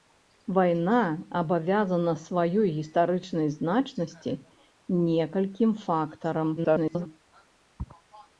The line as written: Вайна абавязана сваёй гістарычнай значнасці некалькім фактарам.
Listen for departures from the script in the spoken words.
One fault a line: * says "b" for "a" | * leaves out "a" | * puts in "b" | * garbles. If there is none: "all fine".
* garbles